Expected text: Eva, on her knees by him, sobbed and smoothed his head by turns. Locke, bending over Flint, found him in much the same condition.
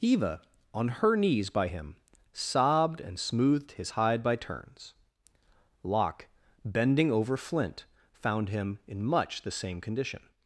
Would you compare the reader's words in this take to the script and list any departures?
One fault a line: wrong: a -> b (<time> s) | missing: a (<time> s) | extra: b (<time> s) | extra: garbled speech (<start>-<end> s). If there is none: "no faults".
wrong: head -> hide (3.9 s)